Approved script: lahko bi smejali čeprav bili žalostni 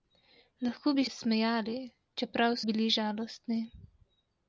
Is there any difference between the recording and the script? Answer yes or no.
no